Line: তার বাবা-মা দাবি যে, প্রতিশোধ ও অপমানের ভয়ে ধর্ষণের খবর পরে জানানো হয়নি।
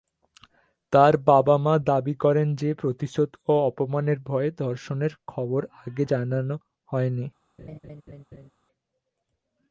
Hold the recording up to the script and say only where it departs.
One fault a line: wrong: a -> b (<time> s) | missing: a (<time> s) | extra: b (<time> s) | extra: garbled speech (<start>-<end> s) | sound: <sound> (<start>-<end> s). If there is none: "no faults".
extra: করেন (2.1 s)
wrong: পরে -> আগে (5.8 s)
sound: laugh (7.6-8.5 s)